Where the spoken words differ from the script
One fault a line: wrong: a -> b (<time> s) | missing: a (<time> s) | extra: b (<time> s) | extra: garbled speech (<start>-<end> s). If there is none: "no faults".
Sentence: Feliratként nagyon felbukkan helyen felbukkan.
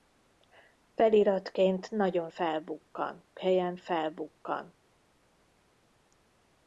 no faults